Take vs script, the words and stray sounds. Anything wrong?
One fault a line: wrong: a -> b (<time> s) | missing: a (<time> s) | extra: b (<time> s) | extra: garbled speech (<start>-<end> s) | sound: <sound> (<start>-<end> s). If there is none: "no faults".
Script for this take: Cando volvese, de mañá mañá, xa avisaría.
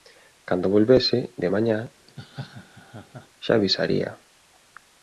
missing: mañá (1.8 s)
sound: laugh (2.1-3.3 s)